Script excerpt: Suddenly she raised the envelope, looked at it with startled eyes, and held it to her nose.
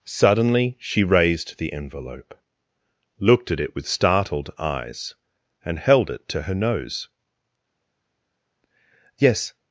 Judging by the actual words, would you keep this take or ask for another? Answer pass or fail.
fail